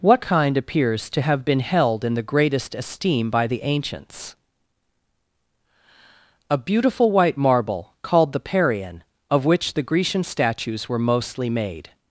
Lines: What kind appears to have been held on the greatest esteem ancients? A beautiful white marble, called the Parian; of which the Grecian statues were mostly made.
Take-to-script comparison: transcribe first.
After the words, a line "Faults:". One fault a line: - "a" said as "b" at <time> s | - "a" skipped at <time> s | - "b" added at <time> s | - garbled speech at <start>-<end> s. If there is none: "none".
What kind appears to have been held in the greatest esteem by the ancients? A beautiful white marble, called the Parian; of which the Grecian statues were mostly made.
Faults:
- "on" said as "in" at 2.0 s
- "by the" added at 3.3 s